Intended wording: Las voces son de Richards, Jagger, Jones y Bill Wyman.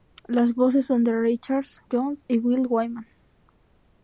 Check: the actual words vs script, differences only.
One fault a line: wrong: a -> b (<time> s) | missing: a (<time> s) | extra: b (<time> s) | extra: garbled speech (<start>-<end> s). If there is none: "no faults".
missing: Jagger (1.8 s)